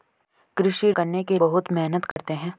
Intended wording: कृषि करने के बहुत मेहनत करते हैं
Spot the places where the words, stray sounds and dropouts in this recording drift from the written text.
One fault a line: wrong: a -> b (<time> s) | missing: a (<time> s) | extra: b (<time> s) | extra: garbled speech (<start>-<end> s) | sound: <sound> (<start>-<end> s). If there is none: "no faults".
sound: dropout (2.1-2.2 s)